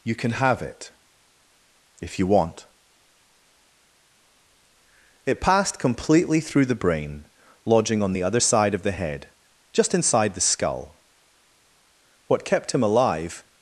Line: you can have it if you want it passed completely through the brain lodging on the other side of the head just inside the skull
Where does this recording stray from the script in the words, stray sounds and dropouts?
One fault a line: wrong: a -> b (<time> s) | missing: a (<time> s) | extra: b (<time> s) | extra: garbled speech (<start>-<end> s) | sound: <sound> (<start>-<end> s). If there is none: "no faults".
extra: what kept him alive (12.3 s)